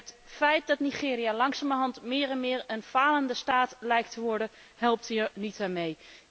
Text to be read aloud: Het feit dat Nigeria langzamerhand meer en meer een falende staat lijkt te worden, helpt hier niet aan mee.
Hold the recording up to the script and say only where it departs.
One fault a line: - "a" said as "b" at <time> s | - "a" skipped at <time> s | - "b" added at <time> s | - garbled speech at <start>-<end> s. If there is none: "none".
none